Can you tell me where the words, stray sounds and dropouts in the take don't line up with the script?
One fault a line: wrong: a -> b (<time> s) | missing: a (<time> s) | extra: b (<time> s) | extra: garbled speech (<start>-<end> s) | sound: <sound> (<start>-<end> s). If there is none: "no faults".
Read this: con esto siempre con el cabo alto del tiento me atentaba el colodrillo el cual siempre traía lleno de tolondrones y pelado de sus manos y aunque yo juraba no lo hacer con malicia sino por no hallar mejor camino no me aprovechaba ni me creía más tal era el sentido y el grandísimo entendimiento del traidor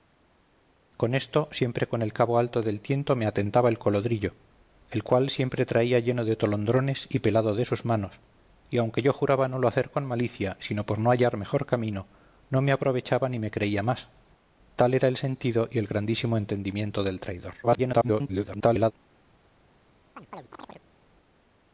extra: garbled speech (17.6-18.9 s)
sound: chirp (20.2-20.8 s)